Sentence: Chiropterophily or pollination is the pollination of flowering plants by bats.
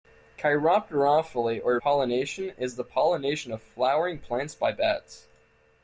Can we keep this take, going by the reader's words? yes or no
yes